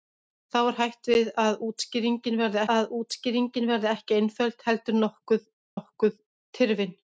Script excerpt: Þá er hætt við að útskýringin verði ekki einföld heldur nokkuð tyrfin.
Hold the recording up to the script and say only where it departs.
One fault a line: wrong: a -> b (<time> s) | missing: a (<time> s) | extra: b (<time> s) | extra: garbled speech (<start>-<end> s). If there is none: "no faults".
extra: að útskýringin verði (2.7 s)
extra: nokkuð (5.8 s)